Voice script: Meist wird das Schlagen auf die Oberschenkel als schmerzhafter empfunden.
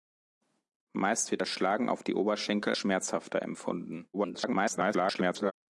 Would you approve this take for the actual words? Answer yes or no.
no